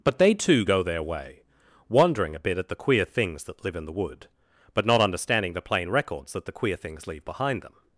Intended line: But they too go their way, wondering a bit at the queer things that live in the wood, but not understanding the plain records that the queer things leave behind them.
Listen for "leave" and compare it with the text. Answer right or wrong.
right